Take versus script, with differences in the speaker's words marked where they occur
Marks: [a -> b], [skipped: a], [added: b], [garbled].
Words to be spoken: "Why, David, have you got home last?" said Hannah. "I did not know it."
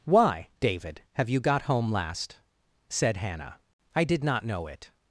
"Why, David, have you got home last?" said Hannah. "I did not know it."